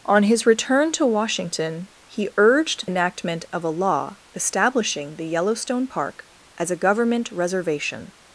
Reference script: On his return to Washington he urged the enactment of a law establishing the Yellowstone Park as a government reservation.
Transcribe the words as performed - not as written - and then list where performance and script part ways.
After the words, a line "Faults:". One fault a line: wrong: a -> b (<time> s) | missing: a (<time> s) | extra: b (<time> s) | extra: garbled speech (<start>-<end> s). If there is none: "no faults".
On his return to Washington he urged enactment of a law establishing the Yellowstone Park as a government reservation.
Faults:
missing: the (2.9 s)